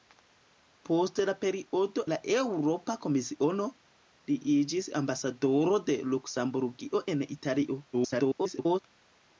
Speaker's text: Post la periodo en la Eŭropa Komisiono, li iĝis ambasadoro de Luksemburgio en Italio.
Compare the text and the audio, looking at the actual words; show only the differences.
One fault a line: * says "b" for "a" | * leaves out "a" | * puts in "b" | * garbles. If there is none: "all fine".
* leaves out "en"
* garbles